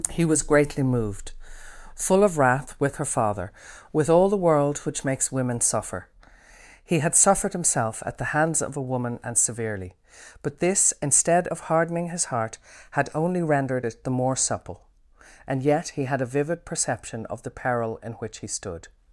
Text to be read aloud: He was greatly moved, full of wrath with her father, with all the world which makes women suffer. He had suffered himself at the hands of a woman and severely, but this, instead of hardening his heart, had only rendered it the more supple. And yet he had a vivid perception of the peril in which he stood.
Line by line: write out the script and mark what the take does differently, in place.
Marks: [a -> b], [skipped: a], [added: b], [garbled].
He was greatly moved, full of wrath with her father, with all the world which makes women suffer. He had suffered himself at the hands of a woman and severely, but this, instead of hardening his heart, had only rendered it the more supple. And yet he had a vivid perception of the peril in which he stood.